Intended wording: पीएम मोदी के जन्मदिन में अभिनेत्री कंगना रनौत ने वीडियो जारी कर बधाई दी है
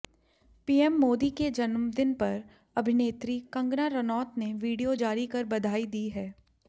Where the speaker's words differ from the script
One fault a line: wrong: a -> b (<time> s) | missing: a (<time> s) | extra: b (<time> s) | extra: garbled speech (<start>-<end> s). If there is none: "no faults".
wrong: में -> पर (2.1 s)